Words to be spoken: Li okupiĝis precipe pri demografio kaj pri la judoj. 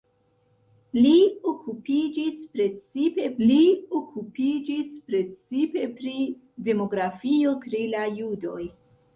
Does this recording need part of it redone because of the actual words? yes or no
yes